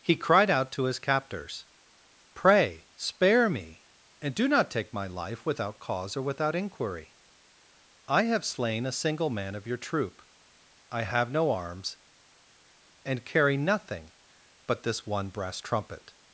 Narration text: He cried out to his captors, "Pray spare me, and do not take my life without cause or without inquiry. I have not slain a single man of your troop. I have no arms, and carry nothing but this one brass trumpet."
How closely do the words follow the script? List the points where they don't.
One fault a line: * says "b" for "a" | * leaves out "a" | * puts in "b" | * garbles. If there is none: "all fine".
* leaves out "not"